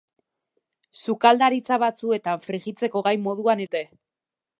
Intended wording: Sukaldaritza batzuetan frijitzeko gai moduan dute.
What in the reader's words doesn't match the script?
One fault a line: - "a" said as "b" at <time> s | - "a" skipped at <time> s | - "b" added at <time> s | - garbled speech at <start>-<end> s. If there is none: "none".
none